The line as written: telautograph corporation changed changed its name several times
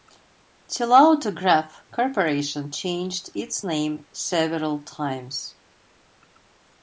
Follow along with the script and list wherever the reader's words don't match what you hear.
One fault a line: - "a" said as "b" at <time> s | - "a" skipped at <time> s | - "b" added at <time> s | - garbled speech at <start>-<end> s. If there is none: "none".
- "changed" skipped at 3.3 s